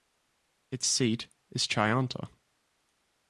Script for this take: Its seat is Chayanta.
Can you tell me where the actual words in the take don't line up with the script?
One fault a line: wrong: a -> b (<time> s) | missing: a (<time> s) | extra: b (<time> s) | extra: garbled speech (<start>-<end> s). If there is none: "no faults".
no faults